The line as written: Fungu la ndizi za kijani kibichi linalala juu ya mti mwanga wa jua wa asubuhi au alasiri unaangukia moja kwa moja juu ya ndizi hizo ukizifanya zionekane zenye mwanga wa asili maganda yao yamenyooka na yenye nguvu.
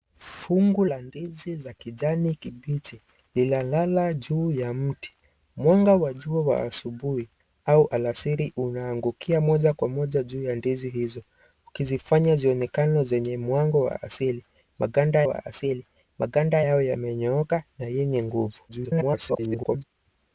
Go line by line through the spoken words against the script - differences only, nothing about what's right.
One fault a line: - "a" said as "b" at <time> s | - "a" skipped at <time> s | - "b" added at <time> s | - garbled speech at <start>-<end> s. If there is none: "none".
- "wa asili maganda" added at 15.2 s
- garbled speech at 18.7-19.8 s